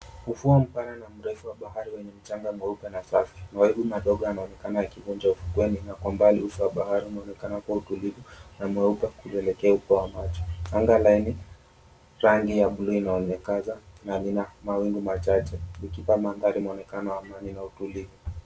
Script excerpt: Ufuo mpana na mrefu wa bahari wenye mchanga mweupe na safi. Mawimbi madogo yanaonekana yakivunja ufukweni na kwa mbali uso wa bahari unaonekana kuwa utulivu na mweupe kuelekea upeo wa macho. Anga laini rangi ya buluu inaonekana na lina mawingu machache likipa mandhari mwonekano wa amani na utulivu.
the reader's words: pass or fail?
pass